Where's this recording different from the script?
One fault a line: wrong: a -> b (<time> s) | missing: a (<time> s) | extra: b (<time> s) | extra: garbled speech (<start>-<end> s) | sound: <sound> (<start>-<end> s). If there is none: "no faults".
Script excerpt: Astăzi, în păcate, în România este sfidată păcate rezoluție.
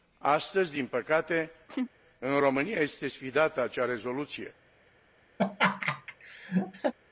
wrong: în -> din (0.7 s)
sound: laugh (1.7-1.9 s)
wrong: păcate -> acea (3.6 s)
sound: laugh (5.4-6.9 s)